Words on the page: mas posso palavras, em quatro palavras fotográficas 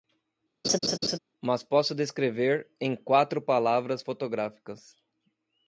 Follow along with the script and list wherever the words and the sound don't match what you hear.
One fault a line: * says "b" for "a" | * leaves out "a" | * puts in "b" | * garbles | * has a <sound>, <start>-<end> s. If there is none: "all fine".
* has a laugh, 0.6-1.2 s
* says "descrever" for "palavras"